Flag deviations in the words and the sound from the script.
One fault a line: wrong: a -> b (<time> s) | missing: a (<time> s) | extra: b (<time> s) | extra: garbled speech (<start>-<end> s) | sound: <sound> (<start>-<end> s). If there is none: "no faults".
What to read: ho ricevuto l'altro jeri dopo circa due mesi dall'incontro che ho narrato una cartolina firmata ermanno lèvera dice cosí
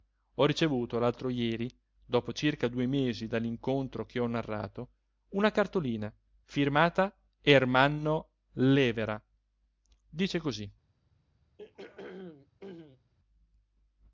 sound: throat clearing (11.6-13.1 s)